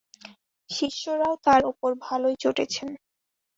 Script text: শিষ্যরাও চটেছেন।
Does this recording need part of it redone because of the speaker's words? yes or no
yes